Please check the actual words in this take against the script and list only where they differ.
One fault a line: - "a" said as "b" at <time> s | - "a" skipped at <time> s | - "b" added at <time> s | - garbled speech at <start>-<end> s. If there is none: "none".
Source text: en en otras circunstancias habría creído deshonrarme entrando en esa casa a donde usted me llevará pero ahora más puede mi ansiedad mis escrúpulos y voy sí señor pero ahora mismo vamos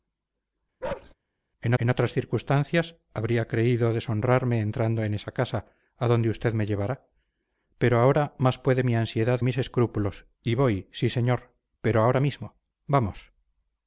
none